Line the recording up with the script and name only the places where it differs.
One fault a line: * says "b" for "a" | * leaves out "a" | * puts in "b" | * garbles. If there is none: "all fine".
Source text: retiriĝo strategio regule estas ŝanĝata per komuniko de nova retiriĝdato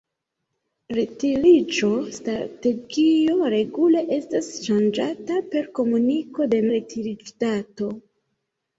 * leaves out "nova"